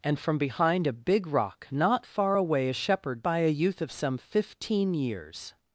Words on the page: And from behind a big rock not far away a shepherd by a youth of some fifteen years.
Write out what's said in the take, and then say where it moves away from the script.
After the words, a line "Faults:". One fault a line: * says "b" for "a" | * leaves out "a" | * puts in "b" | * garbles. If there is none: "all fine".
And from behind a big rock not far away a shepherd by a youth of some fifteen years.
Faults:
all fine